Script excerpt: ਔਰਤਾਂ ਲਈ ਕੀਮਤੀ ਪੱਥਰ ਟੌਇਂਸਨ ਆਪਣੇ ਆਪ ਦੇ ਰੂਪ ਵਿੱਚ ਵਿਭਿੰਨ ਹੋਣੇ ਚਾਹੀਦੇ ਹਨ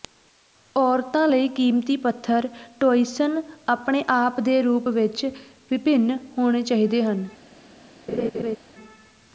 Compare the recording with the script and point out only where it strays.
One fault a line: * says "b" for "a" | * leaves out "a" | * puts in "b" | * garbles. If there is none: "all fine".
all fine